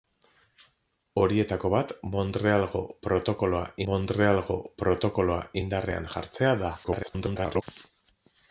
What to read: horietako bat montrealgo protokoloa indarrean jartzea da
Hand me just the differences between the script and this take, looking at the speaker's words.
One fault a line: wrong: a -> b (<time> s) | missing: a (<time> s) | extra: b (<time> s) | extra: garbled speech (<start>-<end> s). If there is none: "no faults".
extra: montrealgo protokoloa (3.9 s)
extra: garbled speech (6.8-7.6 s)